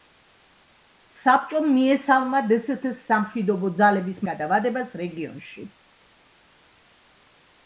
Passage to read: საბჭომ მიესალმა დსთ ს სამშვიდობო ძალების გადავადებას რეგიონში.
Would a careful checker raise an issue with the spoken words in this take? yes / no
no